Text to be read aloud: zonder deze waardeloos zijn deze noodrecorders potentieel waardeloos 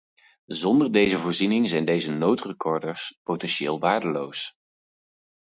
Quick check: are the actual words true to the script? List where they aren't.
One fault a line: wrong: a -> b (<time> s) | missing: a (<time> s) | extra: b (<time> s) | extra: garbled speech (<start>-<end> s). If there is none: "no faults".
wrong: waardeloos -> voorziening (1.2 s)